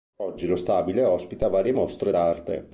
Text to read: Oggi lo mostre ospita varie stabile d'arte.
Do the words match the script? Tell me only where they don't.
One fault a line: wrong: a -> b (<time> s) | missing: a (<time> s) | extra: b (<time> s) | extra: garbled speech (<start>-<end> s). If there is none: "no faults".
wrong: mostre -> stabile (0.6 s)
wrong: stabile -> mostre (1.7 s)